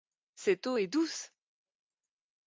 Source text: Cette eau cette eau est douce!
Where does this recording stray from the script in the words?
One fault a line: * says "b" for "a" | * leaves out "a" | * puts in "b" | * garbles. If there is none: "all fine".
* leaves out "cette eau"